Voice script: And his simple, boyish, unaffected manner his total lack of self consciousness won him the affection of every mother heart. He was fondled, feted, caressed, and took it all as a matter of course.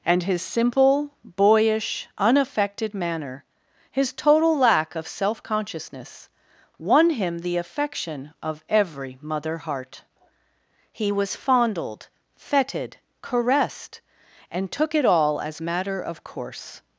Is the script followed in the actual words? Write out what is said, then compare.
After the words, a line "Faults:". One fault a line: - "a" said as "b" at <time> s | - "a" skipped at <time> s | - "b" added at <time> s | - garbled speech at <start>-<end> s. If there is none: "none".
And his simple, boyish, unaffected manner his total lack of self consciousness won him the affection of every mother heart. He was fondled, feted, caressed, and took it all as matter of course.
Faults:
- "a" skipped at 15.6 s